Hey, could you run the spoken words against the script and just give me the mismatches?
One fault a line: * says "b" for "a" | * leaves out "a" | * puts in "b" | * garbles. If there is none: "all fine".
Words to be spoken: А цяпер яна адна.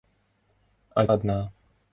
* leaves out "цяпер яна"